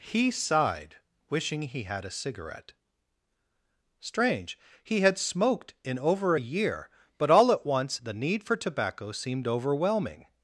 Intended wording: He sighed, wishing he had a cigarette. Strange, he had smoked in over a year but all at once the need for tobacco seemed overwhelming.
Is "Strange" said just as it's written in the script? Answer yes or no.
yes